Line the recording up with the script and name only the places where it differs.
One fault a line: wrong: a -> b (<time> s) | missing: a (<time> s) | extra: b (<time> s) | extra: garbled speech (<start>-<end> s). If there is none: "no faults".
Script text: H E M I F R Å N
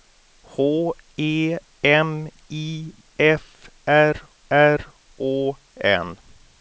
extra: R (4.5 s)